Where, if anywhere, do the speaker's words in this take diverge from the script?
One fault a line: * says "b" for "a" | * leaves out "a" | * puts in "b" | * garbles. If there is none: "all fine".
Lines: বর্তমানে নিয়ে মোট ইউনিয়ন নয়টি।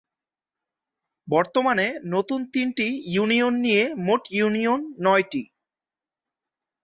* puts in "নতুন তিনটি ইউনিয়ন"